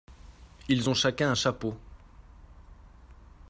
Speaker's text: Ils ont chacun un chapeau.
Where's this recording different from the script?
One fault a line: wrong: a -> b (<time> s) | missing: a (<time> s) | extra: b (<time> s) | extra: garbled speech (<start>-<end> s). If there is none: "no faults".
no faults